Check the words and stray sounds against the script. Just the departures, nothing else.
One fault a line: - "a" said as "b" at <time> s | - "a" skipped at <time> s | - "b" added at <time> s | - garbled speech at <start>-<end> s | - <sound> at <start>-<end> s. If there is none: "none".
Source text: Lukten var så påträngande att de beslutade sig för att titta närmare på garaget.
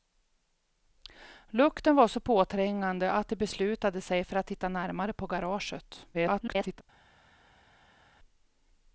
- garbled speech at 6.1-6.8 s